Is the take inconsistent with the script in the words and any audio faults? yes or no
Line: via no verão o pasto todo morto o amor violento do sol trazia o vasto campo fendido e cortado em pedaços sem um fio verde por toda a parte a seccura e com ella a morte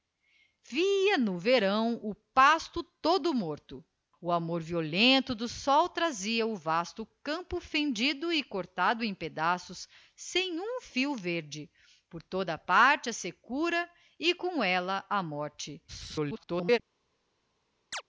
yes